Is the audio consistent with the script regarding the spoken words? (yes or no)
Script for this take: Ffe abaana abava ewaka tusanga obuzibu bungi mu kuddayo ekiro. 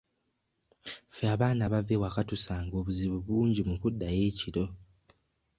yes